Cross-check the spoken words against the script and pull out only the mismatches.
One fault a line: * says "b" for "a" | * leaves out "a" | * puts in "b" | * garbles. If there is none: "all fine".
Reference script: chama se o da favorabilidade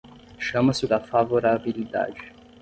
all fine